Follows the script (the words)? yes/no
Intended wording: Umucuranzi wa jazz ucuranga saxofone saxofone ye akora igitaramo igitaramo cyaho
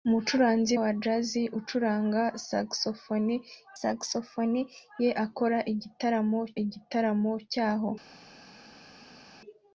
yes